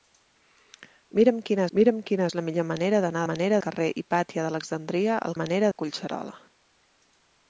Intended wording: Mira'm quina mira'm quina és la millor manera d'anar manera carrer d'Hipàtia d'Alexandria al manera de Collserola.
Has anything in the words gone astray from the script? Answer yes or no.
no